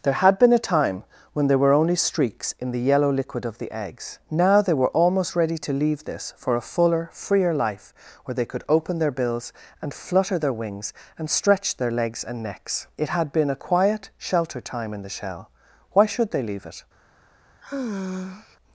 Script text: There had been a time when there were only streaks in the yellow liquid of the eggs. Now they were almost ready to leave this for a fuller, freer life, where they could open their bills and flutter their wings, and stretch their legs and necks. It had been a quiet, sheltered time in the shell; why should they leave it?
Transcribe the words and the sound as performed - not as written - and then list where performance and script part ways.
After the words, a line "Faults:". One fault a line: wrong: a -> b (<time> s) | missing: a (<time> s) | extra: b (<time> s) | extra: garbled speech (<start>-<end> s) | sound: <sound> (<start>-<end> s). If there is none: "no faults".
There had been a time when there were only streaks in the yellow liquid of the eggs. Now they were almost ready to leave this for a fuller, freer life, where they could open their bills and flutter their wings, and stretch their legs and necks. It had been a quiet, sheltered time in the shell; why should they leave it?
Faults:
sound: sigh (17.6-18.6 s)